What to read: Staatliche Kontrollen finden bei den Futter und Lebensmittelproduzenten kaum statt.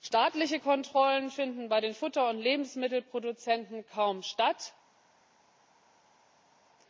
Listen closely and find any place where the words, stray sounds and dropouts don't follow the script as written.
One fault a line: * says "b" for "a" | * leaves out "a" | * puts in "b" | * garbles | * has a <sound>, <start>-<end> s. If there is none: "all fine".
all fine